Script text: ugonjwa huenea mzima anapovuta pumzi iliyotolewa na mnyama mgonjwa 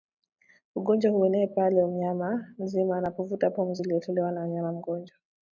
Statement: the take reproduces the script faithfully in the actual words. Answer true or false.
false